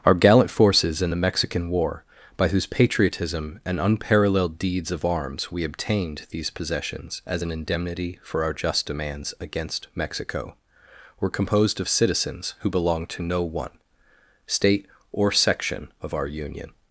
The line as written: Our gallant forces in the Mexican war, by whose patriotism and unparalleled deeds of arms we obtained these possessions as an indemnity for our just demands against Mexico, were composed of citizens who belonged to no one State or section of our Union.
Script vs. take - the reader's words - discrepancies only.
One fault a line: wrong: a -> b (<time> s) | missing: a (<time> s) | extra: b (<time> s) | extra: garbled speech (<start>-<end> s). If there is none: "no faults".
no faults